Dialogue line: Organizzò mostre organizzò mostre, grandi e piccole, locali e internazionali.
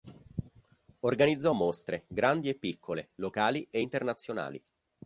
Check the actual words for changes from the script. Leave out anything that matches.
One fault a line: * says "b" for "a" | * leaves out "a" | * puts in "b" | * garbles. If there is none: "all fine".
* leaves out "organizzò mostre"